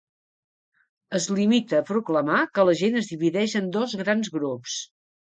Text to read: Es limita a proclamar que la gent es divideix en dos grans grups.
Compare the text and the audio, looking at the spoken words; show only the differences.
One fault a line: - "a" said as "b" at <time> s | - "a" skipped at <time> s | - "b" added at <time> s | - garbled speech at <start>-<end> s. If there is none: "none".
none